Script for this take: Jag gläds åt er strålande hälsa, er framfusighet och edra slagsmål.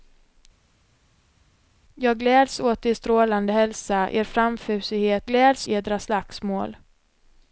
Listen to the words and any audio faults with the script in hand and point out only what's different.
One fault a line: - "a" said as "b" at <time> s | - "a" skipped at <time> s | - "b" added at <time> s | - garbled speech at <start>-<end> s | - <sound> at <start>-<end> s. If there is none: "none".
- "och" said as "gläds" at 5.3 s